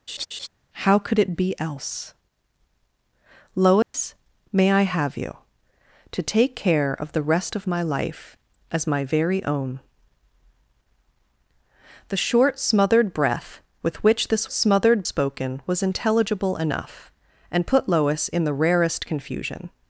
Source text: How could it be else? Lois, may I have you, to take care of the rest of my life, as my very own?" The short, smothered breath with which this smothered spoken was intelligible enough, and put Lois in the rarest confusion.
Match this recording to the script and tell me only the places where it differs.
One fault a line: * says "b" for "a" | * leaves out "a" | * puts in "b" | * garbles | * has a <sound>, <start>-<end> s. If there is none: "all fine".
* has a laugh, 0.1-0.5 s
* has a dropout, 3.8-3.9 s